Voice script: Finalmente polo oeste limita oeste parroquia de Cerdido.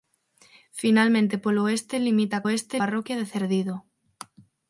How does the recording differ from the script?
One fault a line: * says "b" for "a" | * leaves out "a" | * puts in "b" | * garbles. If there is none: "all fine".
all fine